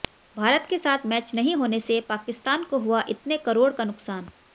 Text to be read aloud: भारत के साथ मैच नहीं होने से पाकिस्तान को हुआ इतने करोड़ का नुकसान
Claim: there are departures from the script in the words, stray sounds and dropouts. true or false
false